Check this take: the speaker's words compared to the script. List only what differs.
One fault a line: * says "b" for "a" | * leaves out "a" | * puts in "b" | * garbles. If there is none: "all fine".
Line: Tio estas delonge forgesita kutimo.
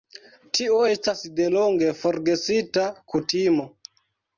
all fine